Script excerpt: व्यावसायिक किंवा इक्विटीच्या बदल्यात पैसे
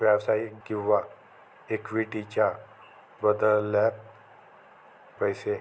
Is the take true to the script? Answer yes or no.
yes